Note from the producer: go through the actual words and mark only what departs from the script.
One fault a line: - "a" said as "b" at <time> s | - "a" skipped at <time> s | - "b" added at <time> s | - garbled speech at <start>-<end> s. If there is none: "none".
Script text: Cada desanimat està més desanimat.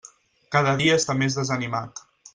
- "desanimat" said as "dia" at 0.8 s